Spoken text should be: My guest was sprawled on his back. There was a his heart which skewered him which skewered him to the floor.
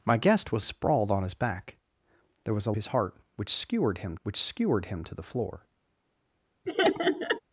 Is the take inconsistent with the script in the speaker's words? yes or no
no